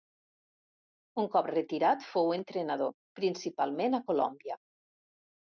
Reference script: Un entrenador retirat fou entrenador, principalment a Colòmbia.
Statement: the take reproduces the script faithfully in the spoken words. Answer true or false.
false